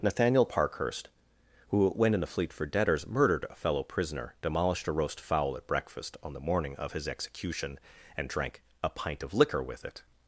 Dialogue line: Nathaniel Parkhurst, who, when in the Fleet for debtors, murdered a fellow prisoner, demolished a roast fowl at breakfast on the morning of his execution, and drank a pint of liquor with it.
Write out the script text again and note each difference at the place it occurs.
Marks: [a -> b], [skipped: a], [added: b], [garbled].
Nathaniel Parkhurst, who, when in the Fleet for debtors, murdered a fellow prisoner, demolished a roast fowl at breakfast on the morning of his execution, and drank a pint of liquor with it.